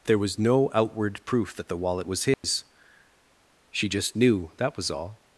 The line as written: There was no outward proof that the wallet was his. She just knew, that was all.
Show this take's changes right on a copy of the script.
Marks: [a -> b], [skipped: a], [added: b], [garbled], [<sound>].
There was no outward proof that the wallet was his. [dropout] She just knew, that was all.